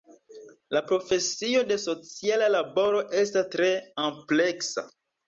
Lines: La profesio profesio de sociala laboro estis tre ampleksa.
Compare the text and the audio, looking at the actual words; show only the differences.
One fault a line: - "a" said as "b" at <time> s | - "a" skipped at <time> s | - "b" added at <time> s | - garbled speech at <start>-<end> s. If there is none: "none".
- "profesio" skipped at 1.6 s
- "estis" said as "estas" at 3.2 s